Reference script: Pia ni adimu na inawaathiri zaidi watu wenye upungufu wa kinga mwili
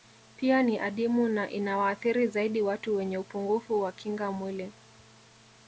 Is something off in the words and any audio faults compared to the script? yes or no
no